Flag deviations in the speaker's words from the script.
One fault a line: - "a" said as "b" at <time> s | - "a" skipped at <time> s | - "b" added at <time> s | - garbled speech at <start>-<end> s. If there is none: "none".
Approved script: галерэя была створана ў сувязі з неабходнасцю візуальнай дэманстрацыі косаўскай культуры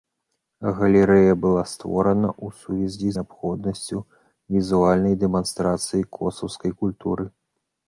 - "з" skipped at 3.1 s